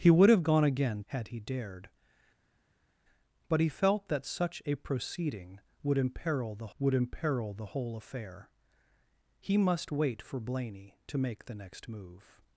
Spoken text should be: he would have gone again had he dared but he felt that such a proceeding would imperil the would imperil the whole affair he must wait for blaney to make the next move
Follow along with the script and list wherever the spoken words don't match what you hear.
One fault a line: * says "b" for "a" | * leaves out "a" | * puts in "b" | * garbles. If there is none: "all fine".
all fine